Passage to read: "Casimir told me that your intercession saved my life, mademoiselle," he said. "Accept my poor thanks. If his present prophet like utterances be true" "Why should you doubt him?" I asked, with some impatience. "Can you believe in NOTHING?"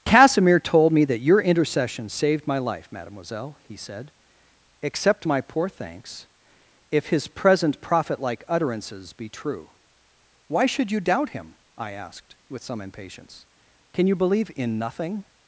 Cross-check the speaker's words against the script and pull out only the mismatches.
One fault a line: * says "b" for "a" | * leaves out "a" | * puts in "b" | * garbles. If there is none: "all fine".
all fine